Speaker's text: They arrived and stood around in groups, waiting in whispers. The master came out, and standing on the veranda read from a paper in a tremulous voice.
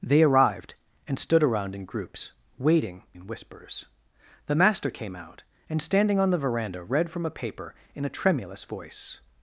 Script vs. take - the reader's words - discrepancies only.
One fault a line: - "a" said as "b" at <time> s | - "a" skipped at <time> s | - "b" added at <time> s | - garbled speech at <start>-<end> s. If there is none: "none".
none